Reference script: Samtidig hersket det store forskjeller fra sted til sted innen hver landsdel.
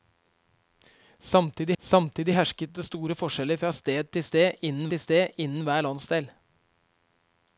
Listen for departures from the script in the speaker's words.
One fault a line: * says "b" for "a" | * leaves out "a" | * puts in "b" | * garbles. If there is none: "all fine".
* puts in "samtidig"
* puts in "til sted innen"